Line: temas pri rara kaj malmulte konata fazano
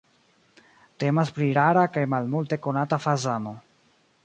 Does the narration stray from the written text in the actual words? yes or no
no